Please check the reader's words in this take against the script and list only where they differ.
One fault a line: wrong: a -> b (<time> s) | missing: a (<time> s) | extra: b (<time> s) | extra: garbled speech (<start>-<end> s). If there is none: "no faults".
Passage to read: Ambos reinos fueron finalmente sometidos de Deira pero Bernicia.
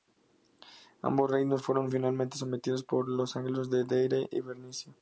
extra: por los anglos (2.8 s)
wrong: pero -> y (4.3 s)